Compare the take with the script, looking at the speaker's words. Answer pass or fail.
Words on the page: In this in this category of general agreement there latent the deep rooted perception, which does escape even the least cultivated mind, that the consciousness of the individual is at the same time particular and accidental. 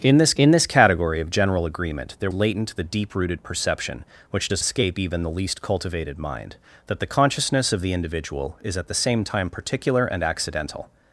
pass